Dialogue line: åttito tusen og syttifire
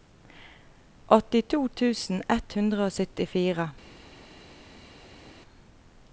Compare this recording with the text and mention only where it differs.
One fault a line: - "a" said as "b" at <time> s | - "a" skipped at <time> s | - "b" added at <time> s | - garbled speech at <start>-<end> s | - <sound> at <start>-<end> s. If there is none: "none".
- "ett hundre" added at 2.4 s